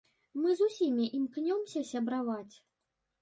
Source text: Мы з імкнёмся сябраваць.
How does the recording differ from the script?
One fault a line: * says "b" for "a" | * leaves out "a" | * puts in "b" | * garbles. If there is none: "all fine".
* puts in "усімі"